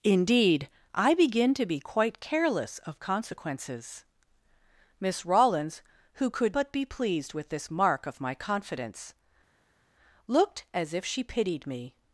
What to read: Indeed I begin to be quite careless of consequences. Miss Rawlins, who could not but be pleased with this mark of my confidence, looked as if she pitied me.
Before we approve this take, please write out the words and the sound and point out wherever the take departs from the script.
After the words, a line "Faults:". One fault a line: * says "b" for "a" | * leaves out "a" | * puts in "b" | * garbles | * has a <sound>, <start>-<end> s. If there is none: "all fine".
Indeed I begin to be quite careless of consequences. Miss Rawlins, who could but be pleased with this mark of my confidence, looked as if she pitied me.
Faults:
* leaves out "not"